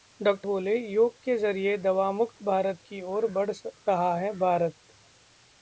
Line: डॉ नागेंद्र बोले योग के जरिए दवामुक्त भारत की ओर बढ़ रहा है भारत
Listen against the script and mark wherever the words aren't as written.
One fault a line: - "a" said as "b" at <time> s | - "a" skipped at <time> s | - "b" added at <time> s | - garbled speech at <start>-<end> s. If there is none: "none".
- "नागेंद्र" skipped at 0.3 s